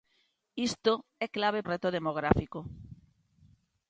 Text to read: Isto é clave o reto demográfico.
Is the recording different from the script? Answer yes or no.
no